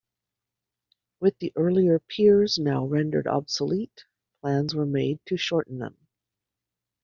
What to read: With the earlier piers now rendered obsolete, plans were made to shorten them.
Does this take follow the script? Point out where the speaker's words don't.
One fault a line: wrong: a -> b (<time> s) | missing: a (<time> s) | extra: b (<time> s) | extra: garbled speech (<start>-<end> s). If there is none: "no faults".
no faults